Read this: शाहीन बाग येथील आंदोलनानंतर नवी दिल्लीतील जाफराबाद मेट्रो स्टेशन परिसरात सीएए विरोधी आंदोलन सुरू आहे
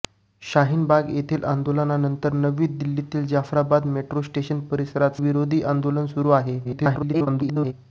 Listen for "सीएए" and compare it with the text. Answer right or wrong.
wrong